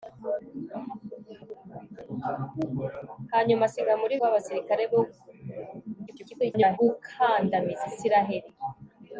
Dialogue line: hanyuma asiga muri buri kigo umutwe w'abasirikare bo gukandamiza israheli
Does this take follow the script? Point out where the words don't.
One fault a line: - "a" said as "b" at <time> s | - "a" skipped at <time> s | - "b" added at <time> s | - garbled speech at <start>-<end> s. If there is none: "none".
- "buri kigo umutwe" skipped at 4.1 s
- garbled speech at 6.1-6.8 s